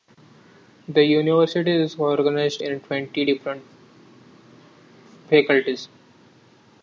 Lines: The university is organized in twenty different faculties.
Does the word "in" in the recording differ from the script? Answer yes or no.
no